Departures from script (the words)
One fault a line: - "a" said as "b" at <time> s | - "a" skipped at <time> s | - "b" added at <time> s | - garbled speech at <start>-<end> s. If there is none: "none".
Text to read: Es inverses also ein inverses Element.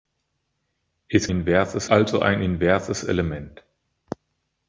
none